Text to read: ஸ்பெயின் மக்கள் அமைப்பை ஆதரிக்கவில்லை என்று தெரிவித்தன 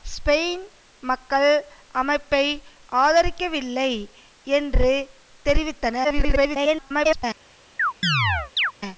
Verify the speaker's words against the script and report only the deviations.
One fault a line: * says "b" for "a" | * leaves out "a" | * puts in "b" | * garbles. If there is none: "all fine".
* garbles